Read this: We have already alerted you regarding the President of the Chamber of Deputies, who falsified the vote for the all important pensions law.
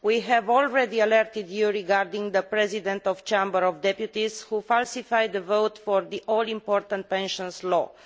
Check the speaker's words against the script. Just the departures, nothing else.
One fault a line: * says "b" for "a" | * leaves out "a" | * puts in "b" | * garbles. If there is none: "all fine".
all fine